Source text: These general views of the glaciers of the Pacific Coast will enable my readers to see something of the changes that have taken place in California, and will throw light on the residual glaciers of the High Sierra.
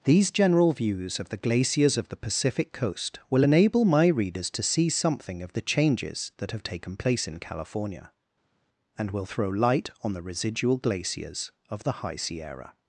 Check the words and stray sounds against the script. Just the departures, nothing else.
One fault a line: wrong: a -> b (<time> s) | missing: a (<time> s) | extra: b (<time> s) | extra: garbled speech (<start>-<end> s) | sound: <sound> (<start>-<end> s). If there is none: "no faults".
no faults